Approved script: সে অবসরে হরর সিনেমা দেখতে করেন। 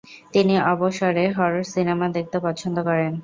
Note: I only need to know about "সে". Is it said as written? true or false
false